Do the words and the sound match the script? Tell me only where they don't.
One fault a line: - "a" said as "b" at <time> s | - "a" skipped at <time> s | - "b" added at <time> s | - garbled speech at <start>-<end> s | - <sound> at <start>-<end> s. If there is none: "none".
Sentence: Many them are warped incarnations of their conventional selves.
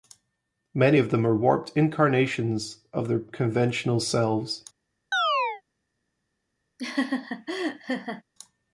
- "of" added at 1.0 s
- chirp at 5.1-5.6 s
- laugh at 6.8-8.2 s